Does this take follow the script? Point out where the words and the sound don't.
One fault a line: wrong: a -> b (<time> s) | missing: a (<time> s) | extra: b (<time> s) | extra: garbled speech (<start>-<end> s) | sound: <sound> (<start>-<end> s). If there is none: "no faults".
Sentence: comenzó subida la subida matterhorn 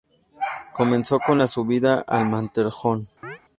wrong: subida -> con (1.2 s)
extra: al (2.1 s)
sound: chirp (3.2-3.4 s)